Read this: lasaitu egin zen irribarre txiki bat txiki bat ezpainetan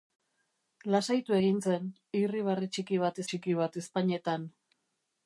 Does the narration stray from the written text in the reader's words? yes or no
no